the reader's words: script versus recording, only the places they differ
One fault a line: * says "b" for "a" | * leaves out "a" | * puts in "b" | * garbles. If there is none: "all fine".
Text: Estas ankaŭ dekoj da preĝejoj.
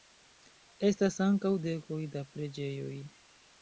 all fine